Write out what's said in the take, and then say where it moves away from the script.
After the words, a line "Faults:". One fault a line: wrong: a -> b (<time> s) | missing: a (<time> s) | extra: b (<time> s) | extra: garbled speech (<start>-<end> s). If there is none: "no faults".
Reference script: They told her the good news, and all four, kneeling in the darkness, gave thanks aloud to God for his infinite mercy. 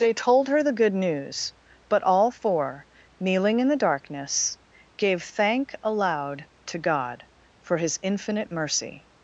They told her the good news, but all four, kneeling in the darkness, gave thank aloud to God for his infinite mercy.
Faults:
wrong: and -> but (1.9 s)
wrong: thanks -> thank (5.2 s)